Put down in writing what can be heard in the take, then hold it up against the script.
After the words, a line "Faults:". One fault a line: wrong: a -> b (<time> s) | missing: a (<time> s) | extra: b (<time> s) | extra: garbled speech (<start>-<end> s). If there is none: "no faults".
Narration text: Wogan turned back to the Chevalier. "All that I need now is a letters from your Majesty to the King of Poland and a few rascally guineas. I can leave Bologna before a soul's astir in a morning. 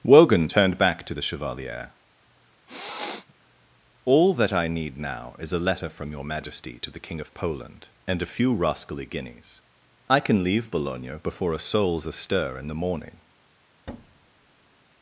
Wogan turned back to the Chevalier. "All that I need now is a letter from your Majesty to the King of Poland and a few rascally guineas. I can leave Bologna before a soul's astir in the morning.
Faults:
wrong: letters -> letter (5.7 s)
wrong: a -> the (12.7 s)